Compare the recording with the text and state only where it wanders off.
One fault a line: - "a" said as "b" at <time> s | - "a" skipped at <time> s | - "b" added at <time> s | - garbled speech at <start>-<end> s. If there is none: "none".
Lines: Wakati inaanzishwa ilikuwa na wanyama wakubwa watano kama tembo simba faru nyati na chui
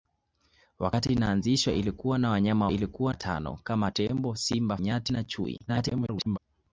- "wakubwa" said as "ilikuwa" at 2.7 s
- "faru" skipped at 4.8 s
- garbled speech at 5.7-6.4 s